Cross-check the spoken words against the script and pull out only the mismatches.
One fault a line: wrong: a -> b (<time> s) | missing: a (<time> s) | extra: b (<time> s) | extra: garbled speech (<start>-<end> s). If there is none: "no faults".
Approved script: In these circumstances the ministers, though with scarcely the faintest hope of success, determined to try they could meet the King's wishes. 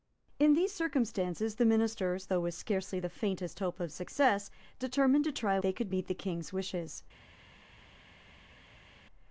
no faults